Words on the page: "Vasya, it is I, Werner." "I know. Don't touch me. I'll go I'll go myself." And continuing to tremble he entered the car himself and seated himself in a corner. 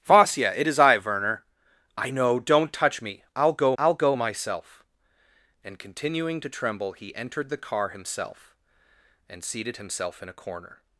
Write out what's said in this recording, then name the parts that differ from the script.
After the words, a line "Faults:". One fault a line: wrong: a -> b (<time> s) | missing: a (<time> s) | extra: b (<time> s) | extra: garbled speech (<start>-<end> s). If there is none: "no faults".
"Vasya, it is I, Werner." "I know. Don't touch me. I'll go I'll go myself." And continuing to tremble he entered the car himself and seated himself in a corner.
Faults:
no faults